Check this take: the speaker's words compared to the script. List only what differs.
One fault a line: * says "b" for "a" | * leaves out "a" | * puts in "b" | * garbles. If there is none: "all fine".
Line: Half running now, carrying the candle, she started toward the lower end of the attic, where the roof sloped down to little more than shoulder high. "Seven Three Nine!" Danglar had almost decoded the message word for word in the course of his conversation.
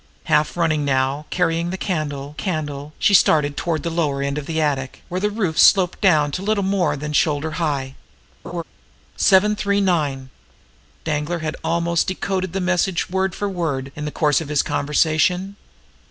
* puts in "candle"